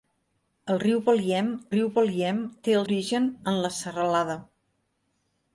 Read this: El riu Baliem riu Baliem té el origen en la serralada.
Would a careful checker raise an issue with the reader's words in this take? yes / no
no